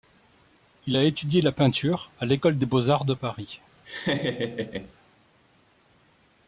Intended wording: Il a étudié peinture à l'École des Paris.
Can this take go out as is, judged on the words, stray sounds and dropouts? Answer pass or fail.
fail